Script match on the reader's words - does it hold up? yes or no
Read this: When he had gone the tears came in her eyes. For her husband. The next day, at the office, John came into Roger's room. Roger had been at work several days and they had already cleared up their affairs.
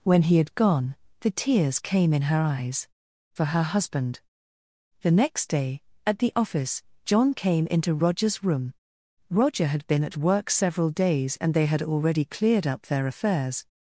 yes